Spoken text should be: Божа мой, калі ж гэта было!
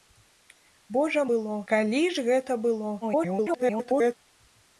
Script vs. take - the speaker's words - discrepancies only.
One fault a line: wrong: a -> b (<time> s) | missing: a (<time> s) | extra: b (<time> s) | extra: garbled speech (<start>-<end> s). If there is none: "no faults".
wrong: мой -> было (1.3 s)
extra: garbled speech (3.0-4.2 s)